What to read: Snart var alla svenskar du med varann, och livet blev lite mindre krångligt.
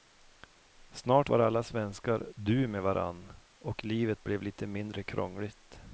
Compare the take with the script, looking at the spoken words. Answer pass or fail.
pass